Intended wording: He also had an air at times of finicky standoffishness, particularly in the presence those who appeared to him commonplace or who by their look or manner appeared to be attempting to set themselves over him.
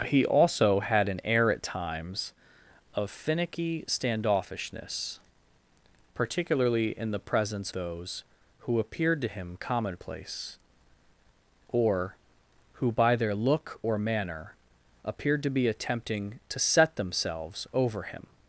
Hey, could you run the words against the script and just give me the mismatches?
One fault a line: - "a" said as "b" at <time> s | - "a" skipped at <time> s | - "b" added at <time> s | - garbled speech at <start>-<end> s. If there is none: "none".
none